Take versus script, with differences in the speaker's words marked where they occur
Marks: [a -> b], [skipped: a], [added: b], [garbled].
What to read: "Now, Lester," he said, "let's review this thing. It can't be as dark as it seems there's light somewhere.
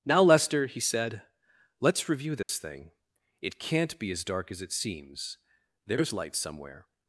"Now, Lester," he said, "let's review this thing. It can't be as dark as it seems there's light somewhere.